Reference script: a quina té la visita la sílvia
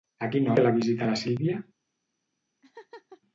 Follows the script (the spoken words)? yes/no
yes